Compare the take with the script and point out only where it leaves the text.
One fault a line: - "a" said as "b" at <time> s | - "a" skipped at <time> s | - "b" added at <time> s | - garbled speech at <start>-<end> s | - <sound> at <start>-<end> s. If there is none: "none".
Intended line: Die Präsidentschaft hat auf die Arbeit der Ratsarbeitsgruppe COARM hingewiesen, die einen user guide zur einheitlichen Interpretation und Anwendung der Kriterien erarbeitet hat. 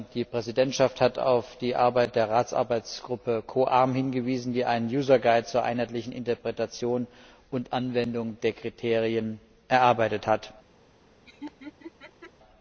- laugh at 11.3-12.3 s